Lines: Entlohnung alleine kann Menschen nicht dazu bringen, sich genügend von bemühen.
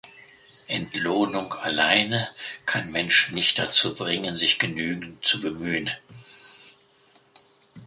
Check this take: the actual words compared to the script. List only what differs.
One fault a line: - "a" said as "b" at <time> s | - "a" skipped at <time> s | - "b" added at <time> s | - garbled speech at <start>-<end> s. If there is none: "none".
- "von" said as "zu" at 5.2 s